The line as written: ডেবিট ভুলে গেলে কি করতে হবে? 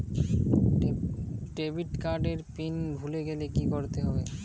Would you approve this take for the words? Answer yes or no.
no